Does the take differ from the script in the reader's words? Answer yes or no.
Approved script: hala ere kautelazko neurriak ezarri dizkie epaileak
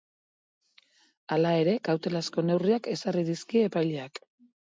no